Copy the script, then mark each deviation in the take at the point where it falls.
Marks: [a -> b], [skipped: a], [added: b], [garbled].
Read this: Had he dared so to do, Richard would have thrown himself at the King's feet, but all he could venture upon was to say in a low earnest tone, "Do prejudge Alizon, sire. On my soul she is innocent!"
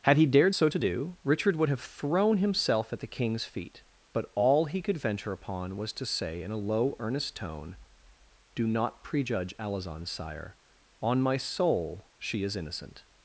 Had he dared so to do, Richard would have thrown himself at the King's feet, but all he could venture upon was to say in a low earnest tone, "Do [added: not] prejudge Alizon, sire. On my soul she is innocent!"